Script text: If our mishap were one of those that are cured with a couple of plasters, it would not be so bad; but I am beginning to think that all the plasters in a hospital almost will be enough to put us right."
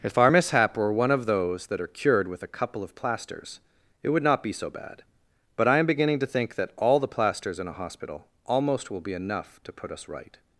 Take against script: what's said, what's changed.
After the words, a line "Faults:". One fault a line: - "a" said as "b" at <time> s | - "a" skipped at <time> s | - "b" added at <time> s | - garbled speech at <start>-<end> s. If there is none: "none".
If our mishap were one of those that are cured with a couple of plasters, it would not be so bad; but I am beginning to think that all the plasters in a hospital almost will be enough to put us right."
Faults:
none